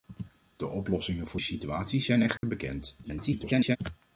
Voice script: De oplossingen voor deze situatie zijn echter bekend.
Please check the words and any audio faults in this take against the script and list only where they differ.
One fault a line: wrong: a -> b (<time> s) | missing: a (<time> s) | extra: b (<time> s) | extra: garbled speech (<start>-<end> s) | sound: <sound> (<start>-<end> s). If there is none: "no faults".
missing: deze (1.4 s)
sound: dropout (2.4-2.4 s)
extra: garbled speech (3.0-3.8 s)